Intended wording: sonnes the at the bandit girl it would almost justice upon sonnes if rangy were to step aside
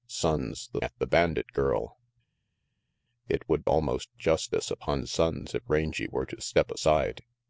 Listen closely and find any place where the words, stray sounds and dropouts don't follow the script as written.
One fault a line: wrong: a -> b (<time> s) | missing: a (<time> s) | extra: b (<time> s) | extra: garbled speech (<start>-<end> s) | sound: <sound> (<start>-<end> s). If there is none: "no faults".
no faults